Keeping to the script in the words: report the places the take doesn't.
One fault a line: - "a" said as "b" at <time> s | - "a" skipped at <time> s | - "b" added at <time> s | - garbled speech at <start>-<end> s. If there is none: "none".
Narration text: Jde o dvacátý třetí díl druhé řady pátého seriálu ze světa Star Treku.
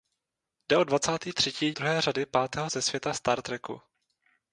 - "díl" skipped at 1.7 s
- "seriálu" skipped at 2.7 s